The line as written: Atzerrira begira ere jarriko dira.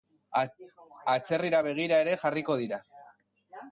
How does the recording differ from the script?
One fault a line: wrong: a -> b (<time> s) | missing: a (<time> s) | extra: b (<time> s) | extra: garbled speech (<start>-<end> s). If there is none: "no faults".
no faults